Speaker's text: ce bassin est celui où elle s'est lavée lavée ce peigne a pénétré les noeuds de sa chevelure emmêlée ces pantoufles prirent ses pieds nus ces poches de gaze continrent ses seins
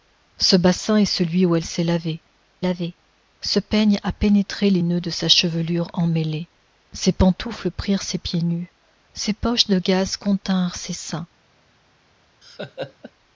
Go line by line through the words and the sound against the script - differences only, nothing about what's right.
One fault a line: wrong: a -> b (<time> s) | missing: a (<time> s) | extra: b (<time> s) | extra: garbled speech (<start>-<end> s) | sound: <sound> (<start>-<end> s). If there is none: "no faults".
sound: laugh (12.4-13.1 s)